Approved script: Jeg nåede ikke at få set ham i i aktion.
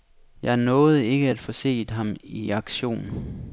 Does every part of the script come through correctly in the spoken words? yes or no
no